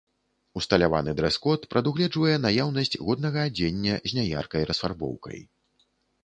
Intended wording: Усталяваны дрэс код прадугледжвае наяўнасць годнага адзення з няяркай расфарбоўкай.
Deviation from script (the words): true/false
false